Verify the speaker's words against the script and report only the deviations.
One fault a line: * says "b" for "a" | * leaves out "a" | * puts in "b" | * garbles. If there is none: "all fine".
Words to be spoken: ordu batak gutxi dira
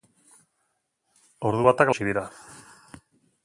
all fine